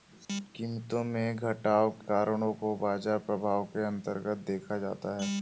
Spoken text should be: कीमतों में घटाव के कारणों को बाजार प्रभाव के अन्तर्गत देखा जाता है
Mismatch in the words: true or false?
true